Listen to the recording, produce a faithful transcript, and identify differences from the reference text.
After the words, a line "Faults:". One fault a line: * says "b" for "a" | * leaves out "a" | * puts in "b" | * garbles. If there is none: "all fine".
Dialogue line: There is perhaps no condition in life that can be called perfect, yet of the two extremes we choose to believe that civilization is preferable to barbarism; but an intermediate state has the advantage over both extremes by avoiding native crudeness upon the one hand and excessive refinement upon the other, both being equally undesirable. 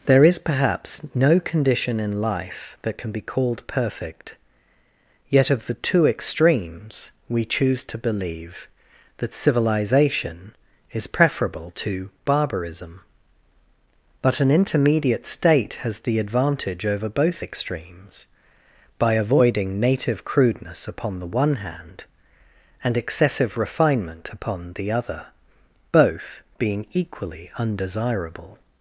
There is perhaps no condition in life that can be called perfect, yet of the two extremes we choose to believe that civilization is preferable to barbarism; but an intermediate state has the advantage over both extremes by avoiding native crudeness upon the one hand and excessive refinement upon the other, both being equally undesirable.
Faults:
all fine